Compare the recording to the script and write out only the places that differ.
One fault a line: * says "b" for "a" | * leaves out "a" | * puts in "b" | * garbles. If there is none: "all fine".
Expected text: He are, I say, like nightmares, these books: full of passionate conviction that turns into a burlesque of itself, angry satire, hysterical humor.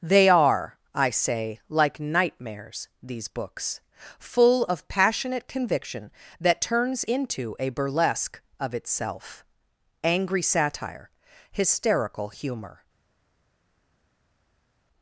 * says "They" for "He"